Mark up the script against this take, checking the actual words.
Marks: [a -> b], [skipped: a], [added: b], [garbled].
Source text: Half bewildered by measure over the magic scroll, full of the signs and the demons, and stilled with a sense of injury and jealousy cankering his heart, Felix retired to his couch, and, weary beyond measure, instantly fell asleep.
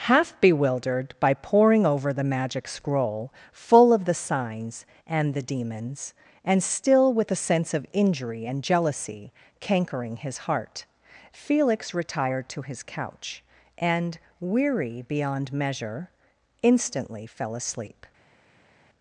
Half bewildered by [measure -> poring] over the magic scroll, full of the signs and the demons, and [stilled -> still] with a sense of injury and jealousy cankering his heart, Felix retired to his couch, and, weary beyond measure, instantly fell asleep.